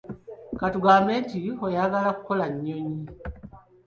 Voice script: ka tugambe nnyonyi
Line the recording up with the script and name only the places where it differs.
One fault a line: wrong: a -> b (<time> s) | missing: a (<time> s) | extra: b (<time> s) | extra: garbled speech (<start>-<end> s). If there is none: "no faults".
extra: nti oyagala kukola (1.2 s)